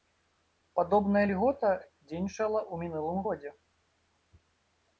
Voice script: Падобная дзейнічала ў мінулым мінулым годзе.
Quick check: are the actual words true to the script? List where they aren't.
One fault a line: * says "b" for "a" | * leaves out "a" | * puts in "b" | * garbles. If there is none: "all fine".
* puts in "льгота"
* leaves out "мінулым"